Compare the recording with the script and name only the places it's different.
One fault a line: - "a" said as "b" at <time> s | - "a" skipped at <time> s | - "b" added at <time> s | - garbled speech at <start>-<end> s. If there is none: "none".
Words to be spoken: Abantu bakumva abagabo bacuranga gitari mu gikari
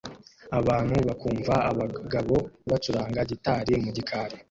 none